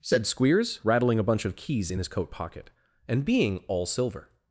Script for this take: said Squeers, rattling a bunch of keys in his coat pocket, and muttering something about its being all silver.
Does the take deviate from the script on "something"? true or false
true